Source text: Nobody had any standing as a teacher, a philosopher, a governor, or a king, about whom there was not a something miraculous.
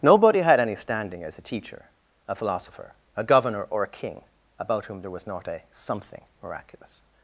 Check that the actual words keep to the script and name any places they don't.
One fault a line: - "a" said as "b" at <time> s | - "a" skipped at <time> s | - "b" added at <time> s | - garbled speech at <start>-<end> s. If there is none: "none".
none